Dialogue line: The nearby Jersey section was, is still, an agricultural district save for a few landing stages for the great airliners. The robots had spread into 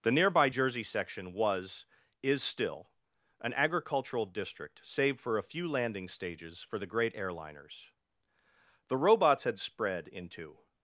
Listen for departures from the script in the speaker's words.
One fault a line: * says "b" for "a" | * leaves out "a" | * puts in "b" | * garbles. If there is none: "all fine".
all fine